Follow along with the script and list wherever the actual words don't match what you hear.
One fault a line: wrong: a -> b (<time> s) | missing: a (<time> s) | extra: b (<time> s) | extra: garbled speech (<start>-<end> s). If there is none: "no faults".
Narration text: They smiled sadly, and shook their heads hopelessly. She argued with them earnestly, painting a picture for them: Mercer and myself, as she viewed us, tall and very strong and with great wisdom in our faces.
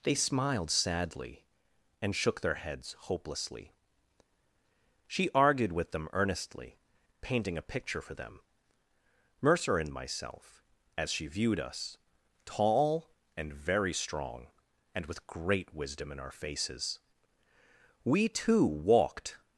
extra: We too walked (18.0 s)